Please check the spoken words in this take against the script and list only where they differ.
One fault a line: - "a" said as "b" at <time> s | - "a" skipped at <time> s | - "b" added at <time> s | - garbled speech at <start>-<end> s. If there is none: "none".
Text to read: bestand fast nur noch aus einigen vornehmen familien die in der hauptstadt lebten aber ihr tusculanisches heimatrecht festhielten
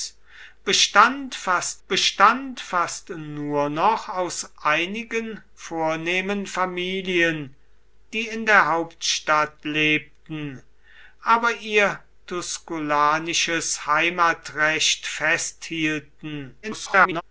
- "bestand fast" added at 1.9 s
- garbled speech at 16.6-17.2 s